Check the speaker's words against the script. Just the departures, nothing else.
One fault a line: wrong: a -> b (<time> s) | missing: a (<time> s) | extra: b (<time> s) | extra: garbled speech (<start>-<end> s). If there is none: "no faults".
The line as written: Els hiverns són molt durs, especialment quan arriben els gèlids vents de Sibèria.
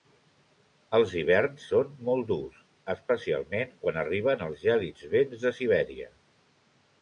no faults